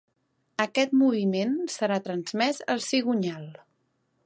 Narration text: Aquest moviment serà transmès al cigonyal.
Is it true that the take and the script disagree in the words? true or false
false